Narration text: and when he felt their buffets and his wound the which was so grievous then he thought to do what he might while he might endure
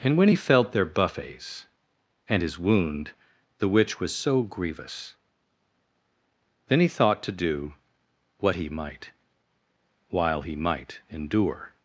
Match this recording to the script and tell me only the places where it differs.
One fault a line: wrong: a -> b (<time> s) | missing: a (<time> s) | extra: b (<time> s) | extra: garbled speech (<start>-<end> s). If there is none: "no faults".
no faults